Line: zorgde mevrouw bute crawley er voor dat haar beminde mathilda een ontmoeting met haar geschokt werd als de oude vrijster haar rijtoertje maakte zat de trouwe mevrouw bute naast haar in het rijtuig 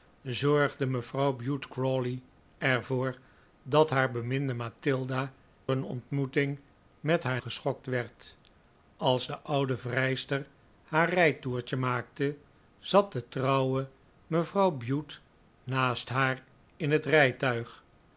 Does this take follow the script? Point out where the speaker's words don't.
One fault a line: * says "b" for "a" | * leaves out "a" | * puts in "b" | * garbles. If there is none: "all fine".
all fine